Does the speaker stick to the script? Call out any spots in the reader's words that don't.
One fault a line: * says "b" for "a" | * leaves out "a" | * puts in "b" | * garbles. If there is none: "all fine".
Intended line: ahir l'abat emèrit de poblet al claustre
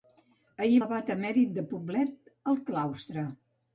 all fine